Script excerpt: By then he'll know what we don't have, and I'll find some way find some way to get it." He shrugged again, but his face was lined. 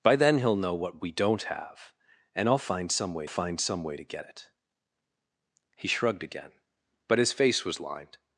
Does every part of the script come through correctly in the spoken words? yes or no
yes